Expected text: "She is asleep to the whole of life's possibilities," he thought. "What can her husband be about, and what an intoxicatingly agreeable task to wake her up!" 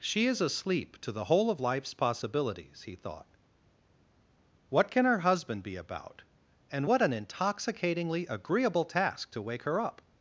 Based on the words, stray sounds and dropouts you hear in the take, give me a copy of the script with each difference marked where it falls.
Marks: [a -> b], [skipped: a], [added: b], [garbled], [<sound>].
"She is asleep to the whole of life's possibilities," he thought. "What can her husband be about, and what an intoxicatingly agreeable task to wake her up!"